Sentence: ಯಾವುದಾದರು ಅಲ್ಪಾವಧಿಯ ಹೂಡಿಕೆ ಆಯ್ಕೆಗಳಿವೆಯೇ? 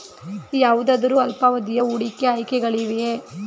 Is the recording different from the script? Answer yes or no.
no